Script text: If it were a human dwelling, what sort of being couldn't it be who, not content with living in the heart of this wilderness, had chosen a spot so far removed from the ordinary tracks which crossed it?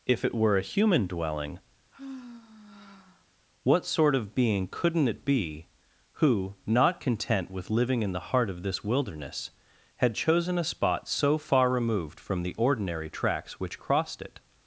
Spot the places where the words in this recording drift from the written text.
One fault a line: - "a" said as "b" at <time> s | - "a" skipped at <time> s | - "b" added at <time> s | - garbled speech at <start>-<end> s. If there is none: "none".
none